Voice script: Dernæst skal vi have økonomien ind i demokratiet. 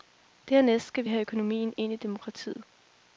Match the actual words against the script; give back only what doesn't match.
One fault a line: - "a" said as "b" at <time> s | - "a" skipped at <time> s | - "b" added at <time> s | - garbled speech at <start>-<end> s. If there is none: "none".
none